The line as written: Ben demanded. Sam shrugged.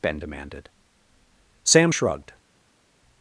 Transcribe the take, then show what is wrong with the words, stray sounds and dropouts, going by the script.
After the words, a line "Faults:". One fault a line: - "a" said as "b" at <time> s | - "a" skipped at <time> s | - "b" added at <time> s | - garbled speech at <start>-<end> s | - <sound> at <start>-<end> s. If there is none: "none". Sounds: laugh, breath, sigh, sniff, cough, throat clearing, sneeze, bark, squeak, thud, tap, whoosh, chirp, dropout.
Ben demanded. Sam shrugged.
Faults:
none